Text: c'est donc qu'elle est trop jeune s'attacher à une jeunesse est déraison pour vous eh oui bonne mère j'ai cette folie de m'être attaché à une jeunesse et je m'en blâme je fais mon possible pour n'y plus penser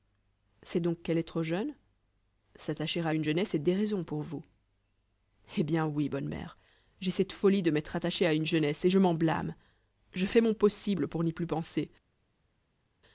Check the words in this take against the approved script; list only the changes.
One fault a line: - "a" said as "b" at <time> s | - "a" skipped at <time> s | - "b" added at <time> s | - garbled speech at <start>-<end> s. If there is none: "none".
- "bien" added at 5.6 s